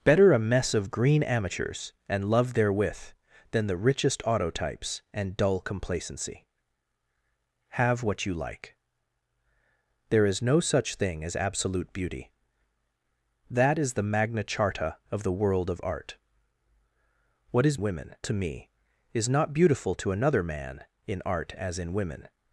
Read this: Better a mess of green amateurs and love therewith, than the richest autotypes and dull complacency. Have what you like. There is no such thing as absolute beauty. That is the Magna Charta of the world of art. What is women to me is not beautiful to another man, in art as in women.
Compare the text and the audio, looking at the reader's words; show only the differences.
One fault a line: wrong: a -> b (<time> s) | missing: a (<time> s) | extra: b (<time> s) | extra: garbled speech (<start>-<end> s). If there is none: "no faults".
no faults